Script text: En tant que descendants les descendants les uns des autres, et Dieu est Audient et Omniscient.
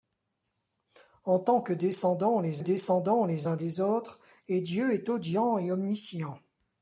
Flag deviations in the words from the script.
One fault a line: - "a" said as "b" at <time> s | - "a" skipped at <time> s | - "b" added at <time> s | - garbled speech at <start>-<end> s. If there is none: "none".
none